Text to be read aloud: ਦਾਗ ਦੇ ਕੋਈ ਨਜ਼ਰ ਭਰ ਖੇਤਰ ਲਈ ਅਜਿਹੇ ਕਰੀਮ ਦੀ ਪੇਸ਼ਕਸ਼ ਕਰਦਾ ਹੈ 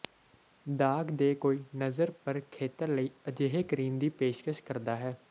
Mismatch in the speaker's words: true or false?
false